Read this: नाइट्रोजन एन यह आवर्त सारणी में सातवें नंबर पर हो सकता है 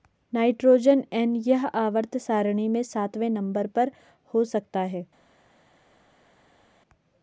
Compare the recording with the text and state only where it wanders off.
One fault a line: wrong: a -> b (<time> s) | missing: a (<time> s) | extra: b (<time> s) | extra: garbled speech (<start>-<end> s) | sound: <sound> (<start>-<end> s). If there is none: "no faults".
no faults